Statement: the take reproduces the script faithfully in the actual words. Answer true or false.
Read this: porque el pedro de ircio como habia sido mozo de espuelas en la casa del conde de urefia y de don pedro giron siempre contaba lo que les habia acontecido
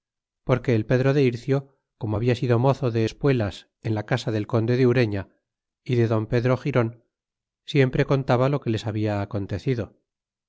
true